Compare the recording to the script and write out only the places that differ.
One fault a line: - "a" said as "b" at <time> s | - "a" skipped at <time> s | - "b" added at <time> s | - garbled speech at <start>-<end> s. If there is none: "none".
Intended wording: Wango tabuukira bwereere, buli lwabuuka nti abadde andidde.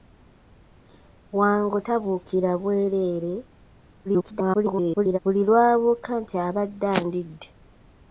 - garbled speech at 4.1-5.2 s